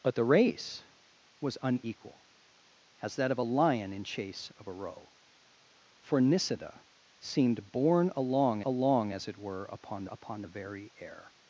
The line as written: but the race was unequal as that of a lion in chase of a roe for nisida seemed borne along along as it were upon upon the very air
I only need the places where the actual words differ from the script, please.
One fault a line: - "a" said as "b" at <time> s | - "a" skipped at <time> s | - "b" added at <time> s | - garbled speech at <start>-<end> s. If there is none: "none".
none